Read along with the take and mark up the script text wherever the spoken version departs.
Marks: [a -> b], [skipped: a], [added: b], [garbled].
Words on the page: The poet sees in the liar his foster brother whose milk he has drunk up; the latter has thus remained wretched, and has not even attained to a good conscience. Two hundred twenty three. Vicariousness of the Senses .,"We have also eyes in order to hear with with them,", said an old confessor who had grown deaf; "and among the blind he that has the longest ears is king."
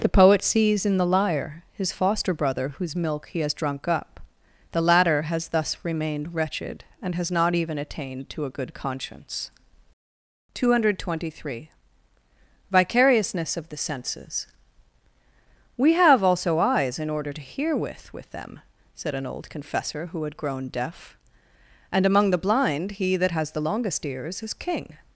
The poet sees in the liar his foster brother whose milk he has drunk up; the latter has thus remained wretched, and has not even attained to a good conscience. Two hundred twenty three. Vicariousness of the Senses .,"We have also eyes in order to hear with with them,", said an old confessor who had grown deaf; "and among the blind he that has the longest ears is king."